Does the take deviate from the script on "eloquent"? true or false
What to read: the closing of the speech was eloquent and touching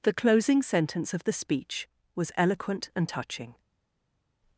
false